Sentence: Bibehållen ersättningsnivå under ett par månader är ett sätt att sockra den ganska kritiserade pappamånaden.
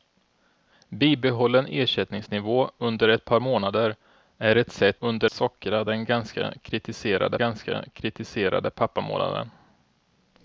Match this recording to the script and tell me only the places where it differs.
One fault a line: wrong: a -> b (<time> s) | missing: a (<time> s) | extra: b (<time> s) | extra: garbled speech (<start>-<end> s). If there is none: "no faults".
wrong: att -> under (5.0 s)
extra: ganska kritiserade (7.3 s)